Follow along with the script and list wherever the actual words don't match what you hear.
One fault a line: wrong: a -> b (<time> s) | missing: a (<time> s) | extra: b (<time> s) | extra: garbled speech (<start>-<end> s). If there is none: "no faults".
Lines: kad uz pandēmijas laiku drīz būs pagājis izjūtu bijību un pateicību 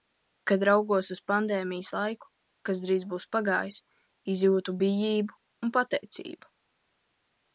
extra: raugos (0.7 s)
extra: kas (2.7 s)